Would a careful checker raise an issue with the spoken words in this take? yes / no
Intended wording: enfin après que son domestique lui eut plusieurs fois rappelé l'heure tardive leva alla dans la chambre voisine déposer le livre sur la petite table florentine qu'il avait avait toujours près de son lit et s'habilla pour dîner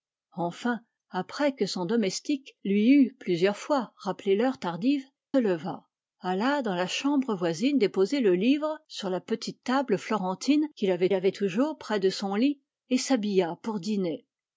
no